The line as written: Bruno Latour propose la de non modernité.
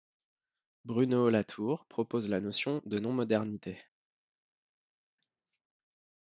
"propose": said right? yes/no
yes